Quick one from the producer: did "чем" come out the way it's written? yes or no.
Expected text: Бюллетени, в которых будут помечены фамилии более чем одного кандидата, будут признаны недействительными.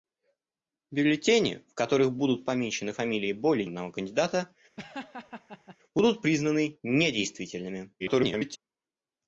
no